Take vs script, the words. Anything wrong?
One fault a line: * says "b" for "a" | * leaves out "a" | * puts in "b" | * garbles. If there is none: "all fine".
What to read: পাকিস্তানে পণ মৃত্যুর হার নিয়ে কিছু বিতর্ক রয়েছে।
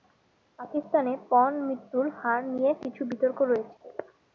all fine